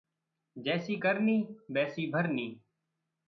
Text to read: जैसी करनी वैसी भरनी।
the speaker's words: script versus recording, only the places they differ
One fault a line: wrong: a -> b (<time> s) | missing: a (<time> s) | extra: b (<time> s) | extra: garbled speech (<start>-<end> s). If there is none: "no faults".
no faults